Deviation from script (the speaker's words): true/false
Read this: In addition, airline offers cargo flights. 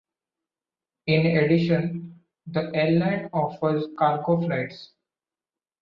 true